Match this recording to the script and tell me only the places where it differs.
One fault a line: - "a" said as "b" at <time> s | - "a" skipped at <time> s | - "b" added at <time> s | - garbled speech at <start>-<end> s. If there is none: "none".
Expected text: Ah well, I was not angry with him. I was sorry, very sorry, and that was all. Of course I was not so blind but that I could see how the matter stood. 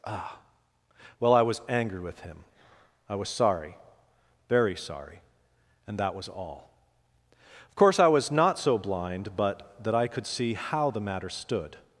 - "not" skipped at 1.6 s